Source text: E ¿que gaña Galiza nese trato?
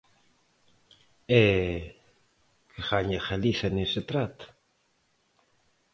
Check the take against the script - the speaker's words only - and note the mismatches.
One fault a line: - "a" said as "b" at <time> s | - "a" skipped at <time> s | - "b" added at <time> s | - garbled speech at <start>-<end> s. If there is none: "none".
none